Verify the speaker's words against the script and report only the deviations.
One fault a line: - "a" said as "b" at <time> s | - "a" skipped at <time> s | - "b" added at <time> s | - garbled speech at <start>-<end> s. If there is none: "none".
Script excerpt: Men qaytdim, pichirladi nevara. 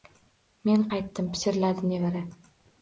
none